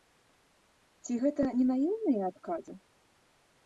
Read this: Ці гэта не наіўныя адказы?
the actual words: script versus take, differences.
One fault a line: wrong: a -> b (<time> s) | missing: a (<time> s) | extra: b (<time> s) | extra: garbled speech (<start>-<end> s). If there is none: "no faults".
no faults